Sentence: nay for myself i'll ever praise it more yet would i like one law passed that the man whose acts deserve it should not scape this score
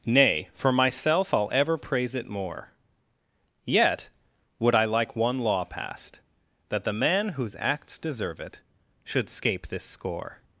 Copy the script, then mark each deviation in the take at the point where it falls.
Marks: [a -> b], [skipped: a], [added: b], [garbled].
nay for myself i'll ever praise it more yet would i like one law passed that the man whose acts deserve it should [skipped: not] scape this score